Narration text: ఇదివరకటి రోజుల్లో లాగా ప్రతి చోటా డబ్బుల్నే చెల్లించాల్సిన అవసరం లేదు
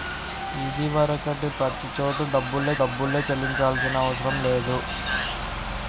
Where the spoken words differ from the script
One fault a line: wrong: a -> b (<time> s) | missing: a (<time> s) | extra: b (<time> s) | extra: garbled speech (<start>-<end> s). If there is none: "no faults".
missing: రోజుల్లో లాగా (1.5 s)
extra: డబ్బుల్నే (2.8 s)